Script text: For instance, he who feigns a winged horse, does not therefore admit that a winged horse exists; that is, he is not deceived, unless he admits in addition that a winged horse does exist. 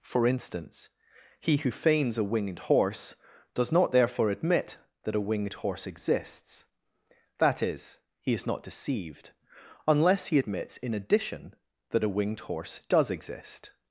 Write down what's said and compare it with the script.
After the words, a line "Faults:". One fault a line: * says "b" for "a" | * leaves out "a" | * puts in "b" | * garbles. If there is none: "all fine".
For instance, he who feigns a winged horse, does not therefore admit that a winged horse exists; that is, he is not deceived, unless he admits in addition that a winged horse does exist.
Faults:
all fine